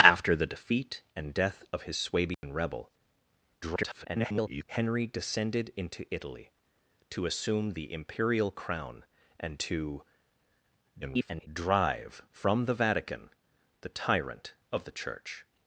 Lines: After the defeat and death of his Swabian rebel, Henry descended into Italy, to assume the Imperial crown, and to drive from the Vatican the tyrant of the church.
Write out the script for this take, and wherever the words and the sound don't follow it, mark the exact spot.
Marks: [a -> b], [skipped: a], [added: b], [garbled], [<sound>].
After the defeat and death of his Swabian [dropout] rebel, [garbled] Henry descended into Italy, to assume the Imperial crown, and to [garbled] drive from the Vatican the tyrant of the church.